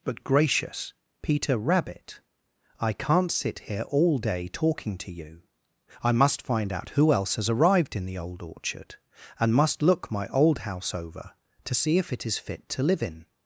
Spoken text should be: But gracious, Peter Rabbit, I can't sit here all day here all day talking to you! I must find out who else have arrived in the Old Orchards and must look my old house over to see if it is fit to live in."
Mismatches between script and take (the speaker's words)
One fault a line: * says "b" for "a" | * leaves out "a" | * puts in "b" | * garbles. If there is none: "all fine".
* leaves out "here all day"
* says "has" for "have"
* says "Orchard" for "Orchards"